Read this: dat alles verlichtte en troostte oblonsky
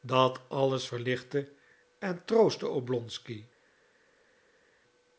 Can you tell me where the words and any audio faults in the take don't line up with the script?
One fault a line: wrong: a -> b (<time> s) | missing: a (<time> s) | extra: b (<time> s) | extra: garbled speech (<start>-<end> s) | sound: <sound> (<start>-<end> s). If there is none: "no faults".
no faults